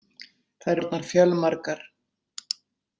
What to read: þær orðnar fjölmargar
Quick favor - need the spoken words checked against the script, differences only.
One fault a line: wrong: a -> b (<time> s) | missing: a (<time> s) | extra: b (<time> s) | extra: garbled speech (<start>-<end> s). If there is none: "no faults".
no faults